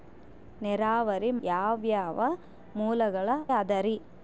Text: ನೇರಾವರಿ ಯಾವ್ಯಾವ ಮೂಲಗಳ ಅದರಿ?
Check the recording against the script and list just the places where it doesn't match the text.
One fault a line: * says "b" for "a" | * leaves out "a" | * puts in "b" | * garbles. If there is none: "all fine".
all fine